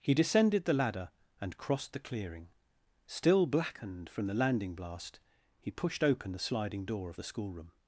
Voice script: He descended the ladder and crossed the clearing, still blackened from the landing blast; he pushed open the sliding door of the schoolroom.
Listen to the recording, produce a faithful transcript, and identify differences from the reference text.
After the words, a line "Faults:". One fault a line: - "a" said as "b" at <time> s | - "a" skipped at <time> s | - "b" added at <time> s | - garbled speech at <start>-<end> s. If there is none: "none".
He descended the ladder and crossed the clearing, still blackened from the landing blast; he pushed open the sliding door of the schoolroom.
Faults:
none